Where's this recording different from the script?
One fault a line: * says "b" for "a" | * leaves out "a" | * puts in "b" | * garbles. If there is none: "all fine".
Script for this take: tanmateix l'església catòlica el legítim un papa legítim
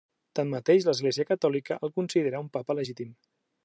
* says "considera" for "legítim"